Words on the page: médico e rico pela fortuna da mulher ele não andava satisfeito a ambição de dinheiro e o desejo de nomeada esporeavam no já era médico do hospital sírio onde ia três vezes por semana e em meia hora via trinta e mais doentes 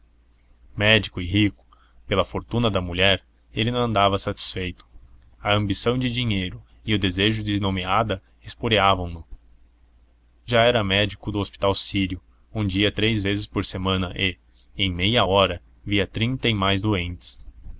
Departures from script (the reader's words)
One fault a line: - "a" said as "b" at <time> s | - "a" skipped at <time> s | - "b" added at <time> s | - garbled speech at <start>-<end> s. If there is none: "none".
none